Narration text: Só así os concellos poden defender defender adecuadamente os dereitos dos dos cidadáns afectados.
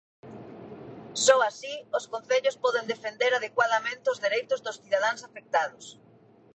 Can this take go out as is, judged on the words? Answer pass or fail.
fail